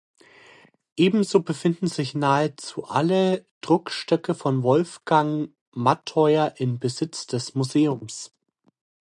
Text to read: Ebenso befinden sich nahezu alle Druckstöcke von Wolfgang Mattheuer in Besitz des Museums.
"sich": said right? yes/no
yes